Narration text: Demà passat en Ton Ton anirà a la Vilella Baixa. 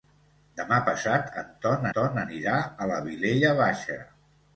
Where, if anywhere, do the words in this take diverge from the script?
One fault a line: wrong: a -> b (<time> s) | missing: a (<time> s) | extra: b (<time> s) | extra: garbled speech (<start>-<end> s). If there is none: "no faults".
no faults